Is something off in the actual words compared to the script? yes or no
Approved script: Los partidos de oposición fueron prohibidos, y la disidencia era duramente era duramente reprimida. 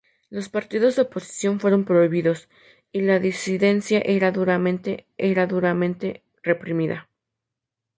no